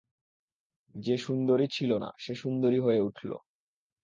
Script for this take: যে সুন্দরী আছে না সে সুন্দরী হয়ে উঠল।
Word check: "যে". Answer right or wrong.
right